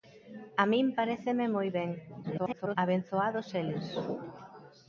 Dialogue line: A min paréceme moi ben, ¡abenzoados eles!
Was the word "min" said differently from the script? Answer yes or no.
no